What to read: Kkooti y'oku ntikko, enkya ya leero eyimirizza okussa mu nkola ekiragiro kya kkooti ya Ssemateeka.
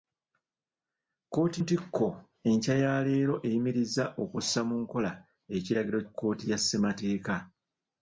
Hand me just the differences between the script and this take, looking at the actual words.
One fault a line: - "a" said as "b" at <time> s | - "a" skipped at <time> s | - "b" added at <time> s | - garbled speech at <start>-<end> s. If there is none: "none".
- "y'oku" skipped at 1.6 s
- "kya" skipped at 6.0 s